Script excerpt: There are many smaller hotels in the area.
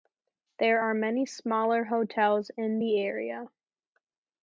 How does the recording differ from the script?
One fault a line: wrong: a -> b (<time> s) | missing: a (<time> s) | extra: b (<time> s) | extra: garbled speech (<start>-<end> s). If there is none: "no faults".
no faults